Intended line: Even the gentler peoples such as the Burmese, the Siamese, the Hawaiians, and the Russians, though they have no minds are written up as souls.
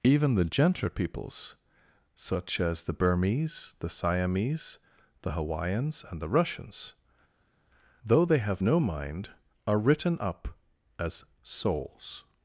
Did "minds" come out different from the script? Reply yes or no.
yes